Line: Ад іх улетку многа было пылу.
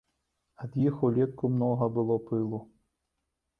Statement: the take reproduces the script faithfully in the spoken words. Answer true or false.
true